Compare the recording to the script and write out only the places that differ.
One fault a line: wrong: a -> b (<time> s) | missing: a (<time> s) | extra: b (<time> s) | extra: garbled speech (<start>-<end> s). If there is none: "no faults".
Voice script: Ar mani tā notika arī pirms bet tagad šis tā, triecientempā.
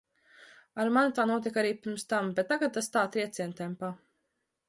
extra: tam (2.1 s)
wrong: šis -> tas (2.8 s)